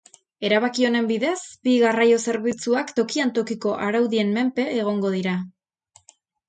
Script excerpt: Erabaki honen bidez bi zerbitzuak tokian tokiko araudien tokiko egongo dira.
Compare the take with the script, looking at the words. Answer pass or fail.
fail